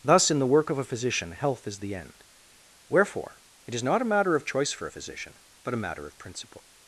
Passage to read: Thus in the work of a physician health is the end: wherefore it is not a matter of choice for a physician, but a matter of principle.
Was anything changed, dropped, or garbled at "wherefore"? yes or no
no